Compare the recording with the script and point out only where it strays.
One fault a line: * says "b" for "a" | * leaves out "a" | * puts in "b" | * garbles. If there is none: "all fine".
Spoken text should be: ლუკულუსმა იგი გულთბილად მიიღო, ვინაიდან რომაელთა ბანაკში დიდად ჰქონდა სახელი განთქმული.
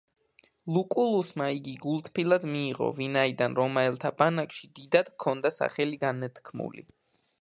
all fine